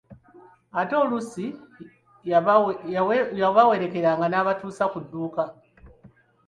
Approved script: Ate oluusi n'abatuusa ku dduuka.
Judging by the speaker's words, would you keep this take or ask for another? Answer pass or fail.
fail